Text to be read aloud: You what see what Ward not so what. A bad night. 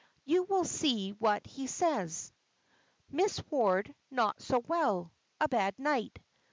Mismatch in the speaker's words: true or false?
true